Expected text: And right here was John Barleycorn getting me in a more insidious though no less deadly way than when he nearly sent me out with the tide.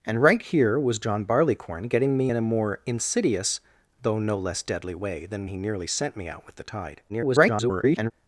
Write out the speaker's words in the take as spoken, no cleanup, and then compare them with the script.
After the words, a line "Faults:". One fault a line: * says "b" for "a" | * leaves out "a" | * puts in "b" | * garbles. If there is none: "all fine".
And right here was John Barleycorn getting me in a more insidious though no less deadly way than he nearly sent me out with the tide. [garbled]
Faults:
* leaves out "when"
* garbles